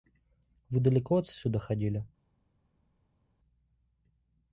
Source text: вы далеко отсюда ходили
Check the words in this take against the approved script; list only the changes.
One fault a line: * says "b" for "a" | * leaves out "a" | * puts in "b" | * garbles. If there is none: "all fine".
all fine